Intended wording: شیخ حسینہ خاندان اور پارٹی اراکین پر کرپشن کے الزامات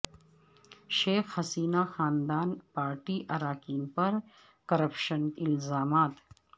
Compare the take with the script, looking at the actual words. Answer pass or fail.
fail